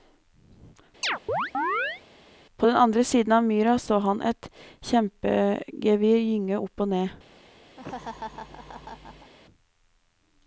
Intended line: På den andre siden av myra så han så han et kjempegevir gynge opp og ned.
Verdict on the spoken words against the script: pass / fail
fail